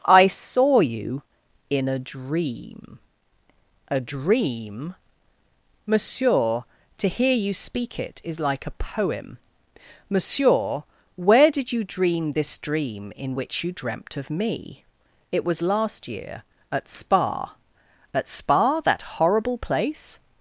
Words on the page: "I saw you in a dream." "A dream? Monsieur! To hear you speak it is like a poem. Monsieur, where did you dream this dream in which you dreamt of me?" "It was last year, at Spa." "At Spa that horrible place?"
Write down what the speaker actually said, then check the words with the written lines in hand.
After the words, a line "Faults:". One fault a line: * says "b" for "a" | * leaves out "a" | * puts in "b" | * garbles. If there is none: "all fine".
"I saw you in a dream." "A dream? Monsieur! To hear you speak it is like a poem. Monsieur, where did you dream this dream in which you dreamt of me?" "It was last year, at Spa." "At Spa that horrible place?"
Faults:
all fine